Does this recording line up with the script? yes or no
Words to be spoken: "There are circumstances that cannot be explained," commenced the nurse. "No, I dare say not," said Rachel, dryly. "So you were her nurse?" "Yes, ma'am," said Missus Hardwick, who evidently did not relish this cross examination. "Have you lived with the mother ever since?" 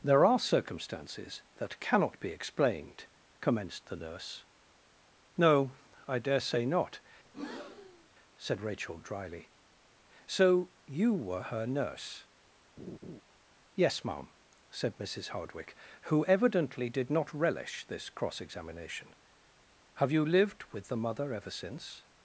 yes